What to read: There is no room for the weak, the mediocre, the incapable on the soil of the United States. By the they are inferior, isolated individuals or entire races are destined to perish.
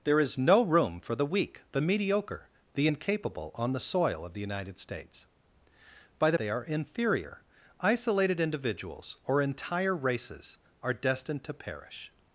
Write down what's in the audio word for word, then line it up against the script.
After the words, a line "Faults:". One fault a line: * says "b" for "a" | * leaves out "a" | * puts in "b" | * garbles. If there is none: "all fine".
There is no room for the weak, the mediocre, the incapable on the soil of the United States. By the they are inferior, isolated individuals or entire races are destined to perish.
Faults:
all fine